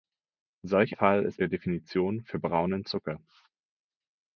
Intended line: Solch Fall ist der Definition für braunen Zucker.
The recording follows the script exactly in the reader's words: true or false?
true